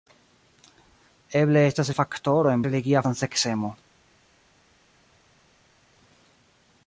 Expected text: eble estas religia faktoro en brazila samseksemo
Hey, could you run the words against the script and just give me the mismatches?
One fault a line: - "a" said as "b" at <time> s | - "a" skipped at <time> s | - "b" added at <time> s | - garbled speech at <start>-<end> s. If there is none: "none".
- "religia" skipped at 1.9 s
- "brazila" said as "religia" at 2.7 s